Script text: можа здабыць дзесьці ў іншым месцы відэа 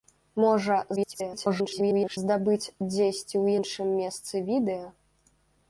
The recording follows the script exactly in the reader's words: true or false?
false